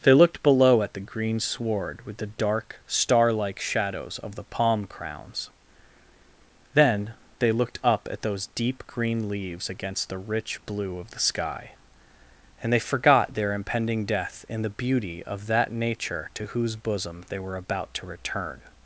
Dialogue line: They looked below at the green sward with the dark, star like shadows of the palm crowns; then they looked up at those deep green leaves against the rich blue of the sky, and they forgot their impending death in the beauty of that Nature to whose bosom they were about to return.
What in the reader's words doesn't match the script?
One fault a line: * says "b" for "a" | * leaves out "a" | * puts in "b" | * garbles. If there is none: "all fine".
all fine